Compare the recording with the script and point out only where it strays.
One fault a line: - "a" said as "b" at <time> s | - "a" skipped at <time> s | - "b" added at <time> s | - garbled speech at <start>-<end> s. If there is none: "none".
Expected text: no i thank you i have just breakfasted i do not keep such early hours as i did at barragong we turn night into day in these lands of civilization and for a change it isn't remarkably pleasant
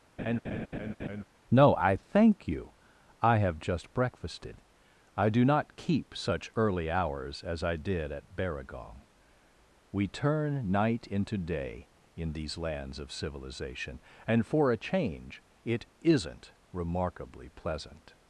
none